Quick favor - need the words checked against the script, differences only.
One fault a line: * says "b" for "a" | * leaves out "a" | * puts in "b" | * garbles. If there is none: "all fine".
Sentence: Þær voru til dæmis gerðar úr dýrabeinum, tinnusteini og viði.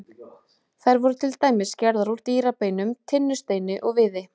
all fine